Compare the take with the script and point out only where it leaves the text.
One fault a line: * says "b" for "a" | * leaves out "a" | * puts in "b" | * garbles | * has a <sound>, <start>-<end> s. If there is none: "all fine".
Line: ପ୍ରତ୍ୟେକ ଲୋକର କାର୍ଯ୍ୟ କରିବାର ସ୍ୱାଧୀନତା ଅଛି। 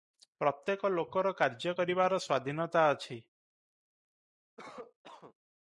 * has a cough, 4.6-5.3 s